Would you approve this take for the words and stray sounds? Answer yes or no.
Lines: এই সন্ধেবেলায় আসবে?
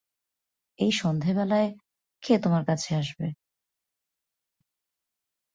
no